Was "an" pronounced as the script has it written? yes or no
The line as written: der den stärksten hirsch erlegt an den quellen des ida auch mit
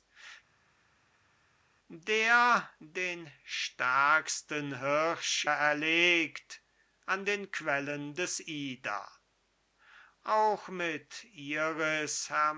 yes